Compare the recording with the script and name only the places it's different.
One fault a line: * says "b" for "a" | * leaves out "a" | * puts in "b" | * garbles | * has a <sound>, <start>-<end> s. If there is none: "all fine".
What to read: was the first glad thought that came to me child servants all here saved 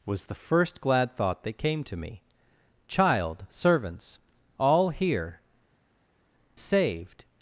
all fine